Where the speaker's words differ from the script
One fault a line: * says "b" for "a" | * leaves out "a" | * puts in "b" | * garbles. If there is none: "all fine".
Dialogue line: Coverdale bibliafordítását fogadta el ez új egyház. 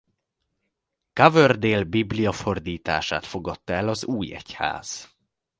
* says "az" for "ez"